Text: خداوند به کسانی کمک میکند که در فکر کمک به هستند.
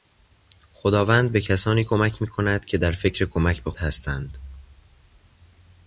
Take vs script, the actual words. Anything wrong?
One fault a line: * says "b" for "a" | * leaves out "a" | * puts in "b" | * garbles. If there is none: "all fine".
all fine